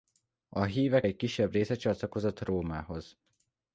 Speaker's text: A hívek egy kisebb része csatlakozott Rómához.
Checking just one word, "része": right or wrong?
right